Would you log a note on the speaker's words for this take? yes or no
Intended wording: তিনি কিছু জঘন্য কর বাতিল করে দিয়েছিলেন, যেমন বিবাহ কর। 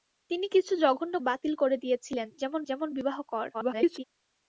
yes